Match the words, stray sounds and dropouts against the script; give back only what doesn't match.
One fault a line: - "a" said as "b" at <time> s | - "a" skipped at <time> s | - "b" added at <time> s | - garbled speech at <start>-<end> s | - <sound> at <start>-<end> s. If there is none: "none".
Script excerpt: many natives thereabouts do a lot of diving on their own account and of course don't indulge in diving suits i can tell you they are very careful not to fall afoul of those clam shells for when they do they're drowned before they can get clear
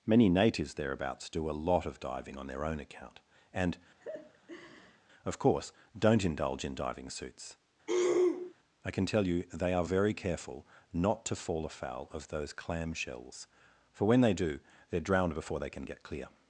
- laugh at 4.0-5.0 s
- throat clearing at 7.9-8.5 s